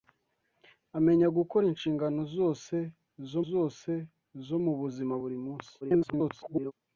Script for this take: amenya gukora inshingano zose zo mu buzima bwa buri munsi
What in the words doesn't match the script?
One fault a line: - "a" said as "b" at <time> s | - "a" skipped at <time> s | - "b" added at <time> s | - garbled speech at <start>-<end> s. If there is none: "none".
- "zose zo" added at 3.5 s
- "bwa" skipped at 5.1 s
- garbled speech at 5.8-6.7 s